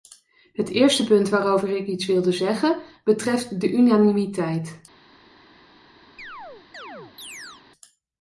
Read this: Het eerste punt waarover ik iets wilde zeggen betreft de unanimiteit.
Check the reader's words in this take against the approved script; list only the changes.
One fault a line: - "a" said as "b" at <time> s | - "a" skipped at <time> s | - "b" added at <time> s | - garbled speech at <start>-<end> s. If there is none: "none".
none